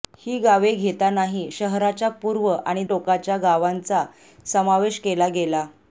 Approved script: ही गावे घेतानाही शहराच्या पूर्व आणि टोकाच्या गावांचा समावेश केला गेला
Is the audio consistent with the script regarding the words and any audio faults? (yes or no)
yes